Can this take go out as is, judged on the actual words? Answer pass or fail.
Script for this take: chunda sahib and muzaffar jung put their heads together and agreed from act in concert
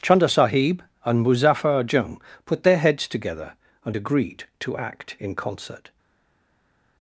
fail